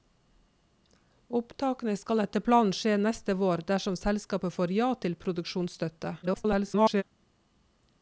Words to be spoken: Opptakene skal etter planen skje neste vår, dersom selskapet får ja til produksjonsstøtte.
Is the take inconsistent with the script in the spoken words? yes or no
yes